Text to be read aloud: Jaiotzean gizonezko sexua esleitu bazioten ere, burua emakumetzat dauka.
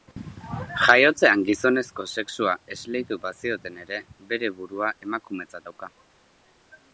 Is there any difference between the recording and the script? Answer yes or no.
yes